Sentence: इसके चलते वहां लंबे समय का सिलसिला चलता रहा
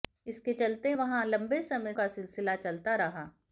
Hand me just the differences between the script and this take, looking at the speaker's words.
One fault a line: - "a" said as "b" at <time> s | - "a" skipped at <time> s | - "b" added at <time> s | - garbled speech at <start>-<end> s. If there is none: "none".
none